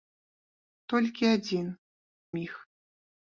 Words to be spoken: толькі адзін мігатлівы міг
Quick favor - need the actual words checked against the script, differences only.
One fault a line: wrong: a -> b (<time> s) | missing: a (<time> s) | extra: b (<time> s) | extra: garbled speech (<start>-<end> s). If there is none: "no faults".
missing: мігатлівы (1.7 s)